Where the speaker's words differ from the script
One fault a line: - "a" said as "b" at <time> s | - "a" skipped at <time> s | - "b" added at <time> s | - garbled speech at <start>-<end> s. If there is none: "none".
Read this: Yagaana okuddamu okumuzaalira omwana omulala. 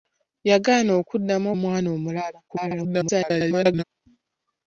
- "okumuzaalira" skipped at 1.5 s
- garbled speech at 2.5-3.8 s